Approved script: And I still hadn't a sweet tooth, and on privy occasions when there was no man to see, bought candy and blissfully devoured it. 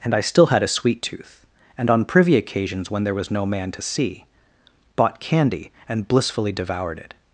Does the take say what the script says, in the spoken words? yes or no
no